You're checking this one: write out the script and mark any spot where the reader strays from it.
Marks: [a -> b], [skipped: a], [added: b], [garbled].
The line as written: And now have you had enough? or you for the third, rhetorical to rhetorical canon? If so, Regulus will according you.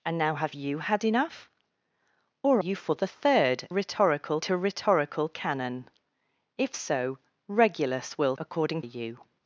And now have you had enough? or you for the third, rhetorical to rhetorical canon? If so, Regulus will according you.